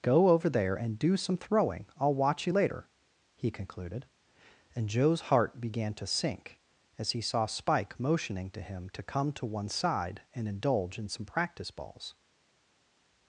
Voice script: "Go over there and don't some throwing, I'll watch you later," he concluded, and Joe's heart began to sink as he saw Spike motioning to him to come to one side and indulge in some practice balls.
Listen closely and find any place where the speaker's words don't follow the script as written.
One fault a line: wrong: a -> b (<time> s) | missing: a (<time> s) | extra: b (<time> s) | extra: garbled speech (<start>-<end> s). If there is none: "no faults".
wrong: don't -> do (1.0 s)